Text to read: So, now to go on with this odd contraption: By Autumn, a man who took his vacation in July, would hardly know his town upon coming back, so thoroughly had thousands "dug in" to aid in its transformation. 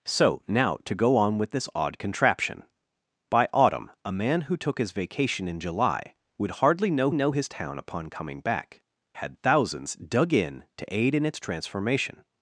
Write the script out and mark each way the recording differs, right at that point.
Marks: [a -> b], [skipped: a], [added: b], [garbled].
So, now to go on with this odd contraption: By Autumn, a man who took his vacation in July, would hardly know [added: know] his town upon coming back, [skipped: so thoroughly] had thousands "dug in" to aid in its transformation.